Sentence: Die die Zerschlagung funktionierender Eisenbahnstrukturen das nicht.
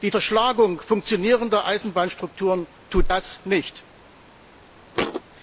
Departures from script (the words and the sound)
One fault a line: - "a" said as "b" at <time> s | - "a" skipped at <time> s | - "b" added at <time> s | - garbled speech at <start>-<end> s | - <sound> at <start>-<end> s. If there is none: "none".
- "die" skipped at 0.1 s
- "tut" added at 2.9 s
- thud at 4.9-5.2 s